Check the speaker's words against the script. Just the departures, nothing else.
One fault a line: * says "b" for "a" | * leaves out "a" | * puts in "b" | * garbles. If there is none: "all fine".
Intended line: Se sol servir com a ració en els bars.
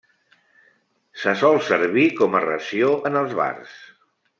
all fine